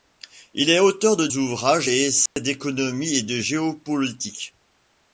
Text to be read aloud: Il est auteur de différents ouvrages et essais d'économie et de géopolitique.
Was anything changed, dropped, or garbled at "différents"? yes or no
yes